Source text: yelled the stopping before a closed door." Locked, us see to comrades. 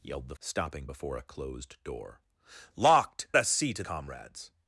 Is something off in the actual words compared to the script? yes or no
no